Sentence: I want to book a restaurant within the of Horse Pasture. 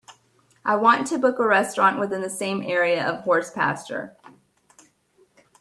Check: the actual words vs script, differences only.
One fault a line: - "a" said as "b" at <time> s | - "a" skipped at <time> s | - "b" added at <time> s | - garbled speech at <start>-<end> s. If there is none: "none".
- "same area" added at 2.3 s